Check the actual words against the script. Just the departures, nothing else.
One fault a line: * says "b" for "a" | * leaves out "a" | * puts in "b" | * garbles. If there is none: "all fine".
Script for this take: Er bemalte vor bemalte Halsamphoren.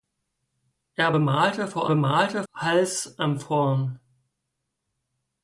all fine